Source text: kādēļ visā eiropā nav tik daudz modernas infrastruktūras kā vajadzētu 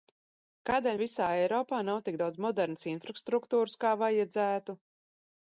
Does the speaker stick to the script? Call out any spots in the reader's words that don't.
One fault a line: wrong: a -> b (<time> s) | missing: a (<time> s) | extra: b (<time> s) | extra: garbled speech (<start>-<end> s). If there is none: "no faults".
no faults